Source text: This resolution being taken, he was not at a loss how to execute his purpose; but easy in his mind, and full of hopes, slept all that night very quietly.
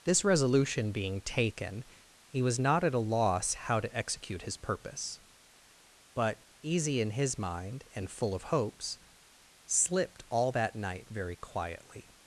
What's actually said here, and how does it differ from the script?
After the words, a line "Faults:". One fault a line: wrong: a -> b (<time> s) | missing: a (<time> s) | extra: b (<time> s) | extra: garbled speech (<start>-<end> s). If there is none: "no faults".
This resolution being taken, he was not at a loss how to execute his purpose; but easy in his mind, and full of hopes, slipped all that night very quietly.
Faults:
wrong: slept -> slipped (9.6 s)